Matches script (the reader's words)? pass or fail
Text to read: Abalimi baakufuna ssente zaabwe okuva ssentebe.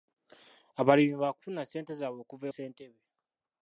pass